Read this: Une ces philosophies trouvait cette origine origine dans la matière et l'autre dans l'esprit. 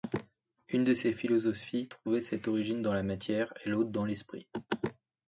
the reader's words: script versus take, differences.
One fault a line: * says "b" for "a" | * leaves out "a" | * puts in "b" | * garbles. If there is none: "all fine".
* puts in "de"
* leaves out "origine"